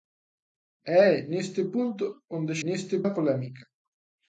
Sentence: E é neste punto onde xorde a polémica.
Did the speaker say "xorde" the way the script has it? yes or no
no